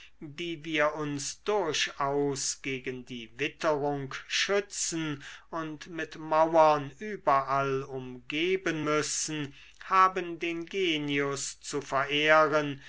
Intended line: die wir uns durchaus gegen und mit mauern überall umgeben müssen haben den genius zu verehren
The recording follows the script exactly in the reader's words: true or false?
false